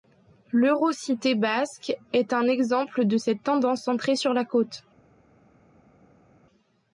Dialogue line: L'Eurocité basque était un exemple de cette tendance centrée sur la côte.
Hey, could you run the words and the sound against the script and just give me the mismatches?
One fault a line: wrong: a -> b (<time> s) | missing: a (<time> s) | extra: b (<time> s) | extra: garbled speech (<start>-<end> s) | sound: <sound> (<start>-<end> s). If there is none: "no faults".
wrong: était -> est (2.1 s)